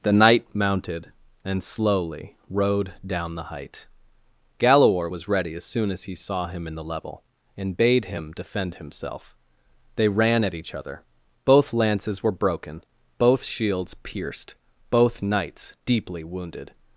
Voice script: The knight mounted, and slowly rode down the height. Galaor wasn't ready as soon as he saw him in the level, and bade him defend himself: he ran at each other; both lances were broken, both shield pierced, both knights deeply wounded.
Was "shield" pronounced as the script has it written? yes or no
no